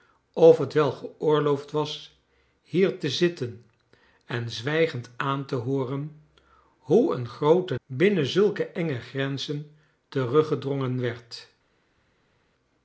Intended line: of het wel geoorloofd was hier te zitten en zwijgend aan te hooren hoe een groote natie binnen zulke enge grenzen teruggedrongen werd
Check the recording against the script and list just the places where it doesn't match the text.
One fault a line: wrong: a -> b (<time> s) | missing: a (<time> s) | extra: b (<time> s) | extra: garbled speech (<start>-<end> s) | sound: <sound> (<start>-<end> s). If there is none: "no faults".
missing: natie (7.8 s)